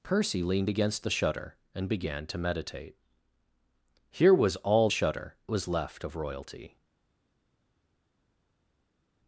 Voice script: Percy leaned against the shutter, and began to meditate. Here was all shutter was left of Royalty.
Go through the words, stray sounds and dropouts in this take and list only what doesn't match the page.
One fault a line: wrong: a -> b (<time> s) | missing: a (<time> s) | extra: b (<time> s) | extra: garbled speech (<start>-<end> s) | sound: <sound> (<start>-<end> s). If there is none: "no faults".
no faults